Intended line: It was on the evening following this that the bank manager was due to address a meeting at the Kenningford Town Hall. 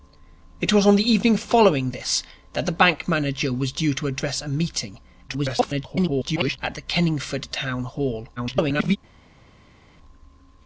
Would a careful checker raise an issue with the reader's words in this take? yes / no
yes